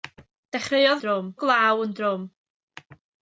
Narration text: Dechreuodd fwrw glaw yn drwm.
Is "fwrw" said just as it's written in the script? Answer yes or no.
no